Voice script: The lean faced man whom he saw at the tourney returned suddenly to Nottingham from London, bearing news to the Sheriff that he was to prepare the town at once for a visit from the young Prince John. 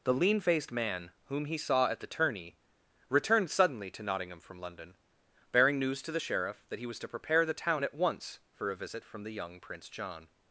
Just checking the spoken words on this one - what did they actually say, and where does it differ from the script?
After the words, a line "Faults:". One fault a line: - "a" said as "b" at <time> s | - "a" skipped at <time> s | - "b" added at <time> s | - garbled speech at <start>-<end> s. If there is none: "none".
The lean faced man whom he saw at the tourney returned suddenly to Nottingham from London, bearing news to the Sheriff that he was to prepare the town at once for a visit from the young Prince John.
Faults:
none